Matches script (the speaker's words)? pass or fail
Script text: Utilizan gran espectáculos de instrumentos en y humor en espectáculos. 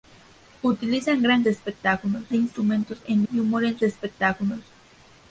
pass